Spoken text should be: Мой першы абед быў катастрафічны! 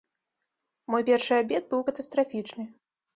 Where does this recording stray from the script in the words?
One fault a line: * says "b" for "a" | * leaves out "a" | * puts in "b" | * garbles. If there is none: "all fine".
all fine